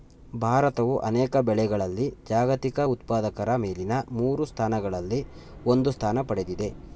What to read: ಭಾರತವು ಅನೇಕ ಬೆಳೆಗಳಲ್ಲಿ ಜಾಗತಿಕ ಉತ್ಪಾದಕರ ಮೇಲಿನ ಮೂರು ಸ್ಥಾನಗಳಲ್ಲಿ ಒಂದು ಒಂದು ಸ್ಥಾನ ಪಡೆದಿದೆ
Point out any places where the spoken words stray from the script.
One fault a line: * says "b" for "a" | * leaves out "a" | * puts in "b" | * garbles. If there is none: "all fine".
* leaves out "ಒಂದು"